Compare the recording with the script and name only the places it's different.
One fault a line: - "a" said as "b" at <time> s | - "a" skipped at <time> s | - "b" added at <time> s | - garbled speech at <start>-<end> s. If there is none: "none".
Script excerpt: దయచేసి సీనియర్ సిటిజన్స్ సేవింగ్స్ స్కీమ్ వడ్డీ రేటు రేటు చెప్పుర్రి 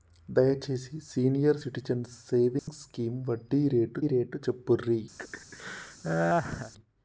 none